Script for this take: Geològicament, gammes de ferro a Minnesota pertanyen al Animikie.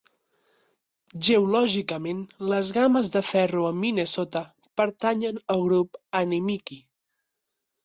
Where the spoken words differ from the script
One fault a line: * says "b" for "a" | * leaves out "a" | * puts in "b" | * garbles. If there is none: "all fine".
* puts in "les"
* puts in "Grup"